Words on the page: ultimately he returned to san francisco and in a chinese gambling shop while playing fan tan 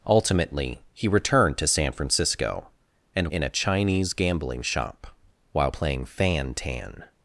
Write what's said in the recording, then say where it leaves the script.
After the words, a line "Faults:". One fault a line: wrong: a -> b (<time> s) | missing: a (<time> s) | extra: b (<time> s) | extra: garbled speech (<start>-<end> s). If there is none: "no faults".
ultimately he returned to san francisco and in a chinese gambling shop while playing fan tan
Faults:
no faults